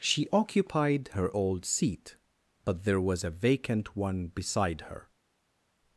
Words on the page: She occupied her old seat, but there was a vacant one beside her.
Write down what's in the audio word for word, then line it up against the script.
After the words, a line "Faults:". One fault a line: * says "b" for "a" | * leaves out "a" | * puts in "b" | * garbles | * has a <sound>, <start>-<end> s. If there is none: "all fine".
She occupied her old seat, but there was a vacant one beside her.
Faults:
all fine